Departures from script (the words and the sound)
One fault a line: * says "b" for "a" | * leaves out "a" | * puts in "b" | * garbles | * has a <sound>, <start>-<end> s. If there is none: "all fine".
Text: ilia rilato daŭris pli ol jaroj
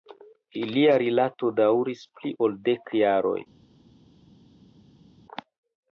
* puts in "dek"